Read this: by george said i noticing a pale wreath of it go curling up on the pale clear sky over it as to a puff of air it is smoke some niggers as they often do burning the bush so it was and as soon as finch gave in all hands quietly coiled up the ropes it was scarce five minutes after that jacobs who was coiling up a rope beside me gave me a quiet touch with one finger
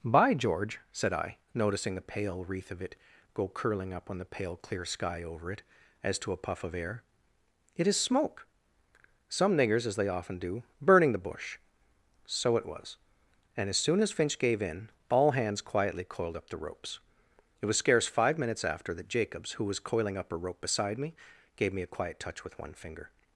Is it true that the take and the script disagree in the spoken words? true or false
true